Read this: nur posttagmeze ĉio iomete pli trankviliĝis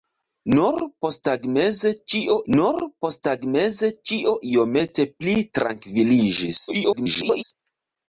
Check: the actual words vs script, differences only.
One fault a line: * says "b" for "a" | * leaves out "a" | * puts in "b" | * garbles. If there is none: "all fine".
* puts in "nur posttagmeze ĉio"
* garbles